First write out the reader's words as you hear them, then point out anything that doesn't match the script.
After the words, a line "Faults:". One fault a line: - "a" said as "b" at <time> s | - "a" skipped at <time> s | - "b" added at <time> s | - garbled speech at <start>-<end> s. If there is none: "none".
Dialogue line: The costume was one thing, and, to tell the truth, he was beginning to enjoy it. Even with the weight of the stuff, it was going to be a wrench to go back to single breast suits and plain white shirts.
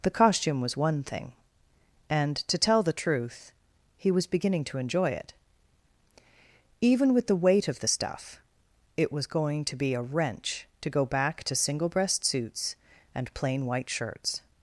The costume was one thing, and, to tell the truth, he was beginning to enjoy it. Even with the weight of the stuff, it was going to be a wrench to go back to single breast suits and plain white shirts.
Faults:
none